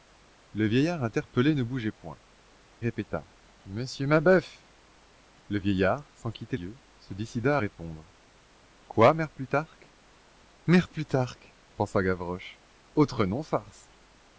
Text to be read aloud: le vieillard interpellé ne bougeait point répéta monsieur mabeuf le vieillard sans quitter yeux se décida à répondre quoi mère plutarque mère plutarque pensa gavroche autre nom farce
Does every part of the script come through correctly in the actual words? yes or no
yes